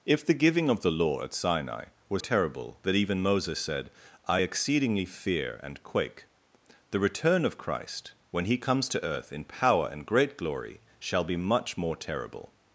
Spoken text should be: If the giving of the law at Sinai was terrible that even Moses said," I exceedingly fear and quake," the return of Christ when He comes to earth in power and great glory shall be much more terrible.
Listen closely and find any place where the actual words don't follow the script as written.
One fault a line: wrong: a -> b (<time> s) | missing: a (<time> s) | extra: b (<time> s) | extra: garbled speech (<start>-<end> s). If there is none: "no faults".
no faults